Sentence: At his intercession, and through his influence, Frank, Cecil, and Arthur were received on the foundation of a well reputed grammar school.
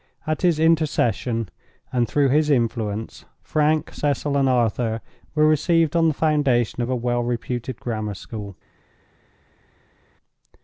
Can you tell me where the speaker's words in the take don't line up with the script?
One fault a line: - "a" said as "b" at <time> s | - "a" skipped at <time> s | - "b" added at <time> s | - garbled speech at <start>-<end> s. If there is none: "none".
none